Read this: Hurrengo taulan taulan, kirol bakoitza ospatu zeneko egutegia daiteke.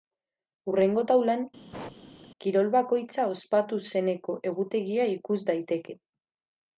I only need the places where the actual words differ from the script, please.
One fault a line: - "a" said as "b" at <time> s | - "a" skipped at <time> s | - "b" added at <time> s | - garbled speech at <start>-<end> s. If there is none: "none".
- "taulan" skipped at 1.4 s
- "ikus" added at 5.2 s